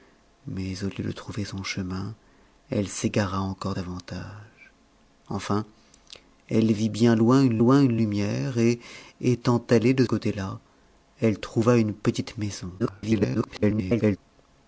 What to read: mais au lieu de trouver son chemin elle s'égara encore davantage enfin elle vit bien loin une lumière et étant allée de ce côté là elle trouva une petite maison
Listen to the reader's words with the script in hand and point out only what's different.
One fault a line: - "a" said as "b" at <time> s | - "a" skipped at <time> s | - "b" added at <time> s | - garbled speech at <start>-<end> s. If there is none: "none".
- "loin une" added at 7.6 s
- "ce" skipped at 10.1 s
- garbled speech at 12.8-14.2 s